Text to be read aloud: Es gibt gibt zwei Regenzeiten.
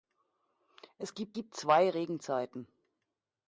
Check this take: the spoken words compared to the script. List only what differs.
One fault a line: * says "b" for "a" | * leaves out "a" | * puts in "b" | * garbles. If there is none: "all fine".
all fine